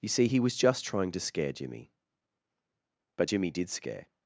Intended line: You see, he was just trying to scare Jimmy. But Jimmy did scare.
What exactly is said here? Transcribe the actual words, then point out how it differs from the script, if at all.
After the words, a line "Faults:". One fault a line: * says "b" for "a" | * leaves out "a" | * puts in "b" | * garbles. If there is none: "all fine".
You see, he was just trying to scare Jimmy. But Jimmy did scare.
Faults:
all fine